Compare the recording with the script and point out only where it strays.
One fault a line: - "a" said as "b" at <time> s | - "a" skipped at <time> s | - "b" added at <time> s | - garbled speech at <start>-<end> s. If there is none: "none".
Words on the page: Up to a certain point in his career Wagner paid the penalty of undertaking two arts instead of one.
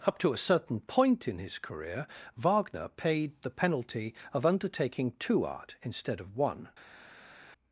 - "arts" said as "art" at 5.4 s